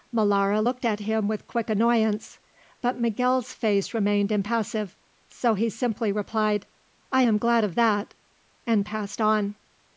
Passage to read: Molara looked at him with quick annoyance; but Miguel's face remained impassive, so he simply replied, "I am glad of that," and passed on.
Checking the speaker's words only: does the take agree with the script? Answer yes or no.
yes